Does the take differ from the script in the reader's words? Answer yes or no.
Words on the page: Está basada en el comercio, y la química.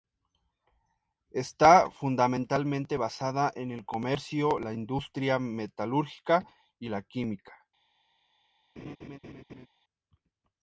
yes